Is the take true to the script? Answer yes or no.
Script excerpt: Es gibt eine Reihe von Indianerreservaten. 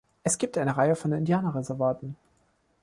yes